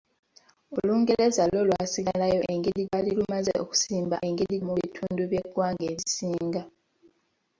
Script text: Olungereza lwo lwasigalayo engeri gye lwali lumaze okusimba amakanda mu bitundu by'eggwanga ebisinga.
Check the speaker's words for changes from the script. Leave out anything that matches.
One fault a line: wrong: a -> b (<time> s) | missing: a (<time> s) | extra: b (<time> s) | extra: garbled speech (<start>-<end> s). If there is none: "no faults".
missing: gye (2.8 s)
wrong: amakanda -> engeri (4.2 s)